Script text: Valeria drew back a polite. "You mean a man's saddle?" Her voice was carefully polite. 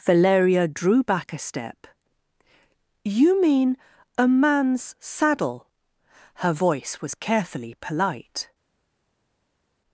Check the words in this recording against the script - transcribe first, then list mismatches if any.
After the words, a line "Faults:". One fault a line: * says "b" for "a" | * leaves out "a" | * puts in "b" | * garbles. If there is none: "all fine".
Valeria drew back a step. "You mean a man's saddle?" Her voice was carefully polite.
Faults:
* says "step" for "polite"